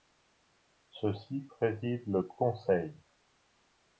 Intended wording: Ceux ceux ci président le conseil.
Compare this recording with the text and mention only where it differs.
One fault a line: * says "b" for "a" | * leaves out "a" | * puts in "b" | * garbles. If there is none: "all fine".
* leaves out "ceux"